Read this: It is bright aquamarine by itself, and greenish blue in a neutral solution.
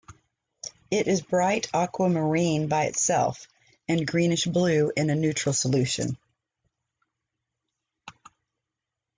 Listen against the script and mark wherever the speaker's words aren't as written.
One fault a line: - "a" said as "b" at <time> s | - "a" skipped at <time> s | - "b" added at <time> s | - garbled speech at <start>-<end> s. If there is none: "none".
none